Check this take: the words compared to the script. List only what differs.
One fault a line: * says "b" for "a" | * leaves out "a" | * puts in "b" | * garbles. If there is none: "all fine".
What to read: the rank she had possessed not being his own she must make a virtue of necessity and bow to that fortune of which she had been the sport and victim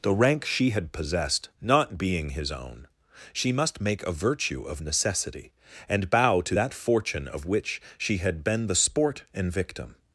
all fine